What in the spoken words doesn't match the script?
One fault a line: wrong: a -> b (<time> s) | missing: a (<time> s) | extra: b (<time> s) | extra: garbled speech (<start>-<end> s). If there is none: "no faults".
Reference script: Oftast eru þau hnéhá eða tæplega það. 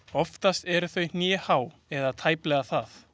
no faults